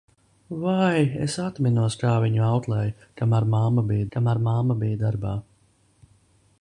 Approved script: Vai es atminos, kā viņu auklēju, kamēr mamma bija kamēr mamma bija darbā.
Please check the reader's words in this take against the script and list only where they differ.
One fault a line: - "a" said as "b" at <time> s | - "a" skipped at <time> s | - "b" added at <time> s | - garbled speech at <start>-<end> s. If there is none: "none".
none